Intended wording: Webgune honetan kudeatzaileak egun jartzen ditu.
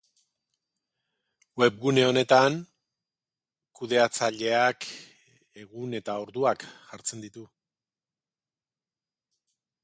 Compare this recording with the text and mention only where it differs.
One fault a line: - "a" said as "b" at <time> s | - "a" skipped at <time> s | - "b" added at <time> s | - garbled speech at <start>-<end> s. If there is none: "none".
- "eta orduak" added at 6.0 s